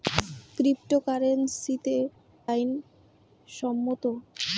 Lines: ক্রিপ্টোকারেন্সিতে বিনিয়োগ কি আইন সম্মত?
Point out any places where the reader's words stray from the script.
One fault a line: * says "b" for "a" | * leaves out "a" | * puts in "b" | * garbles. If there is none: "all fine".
* leaves out "বিনিয়োগ কি"